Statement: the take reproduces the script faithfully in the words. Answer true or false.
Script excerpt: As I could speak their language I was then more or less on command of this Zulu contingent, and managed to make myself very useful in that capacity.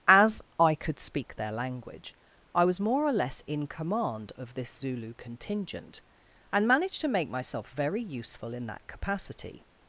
false